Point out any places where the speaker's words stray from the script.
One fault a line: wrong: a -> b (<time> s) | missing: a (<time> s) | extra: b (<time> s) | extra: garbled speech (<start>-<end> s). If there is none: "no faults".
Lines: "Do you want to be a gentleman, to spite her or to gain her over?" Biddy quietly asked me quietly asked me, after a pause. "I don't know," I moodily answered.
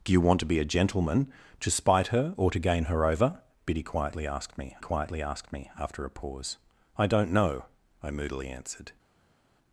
no faults